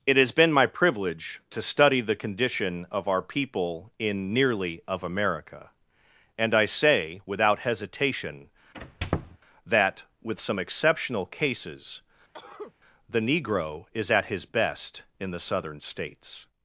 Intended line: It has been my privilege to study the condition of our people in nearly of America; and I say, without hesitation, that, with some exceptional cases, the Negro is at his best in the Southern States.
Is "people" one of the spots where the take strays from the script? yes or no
no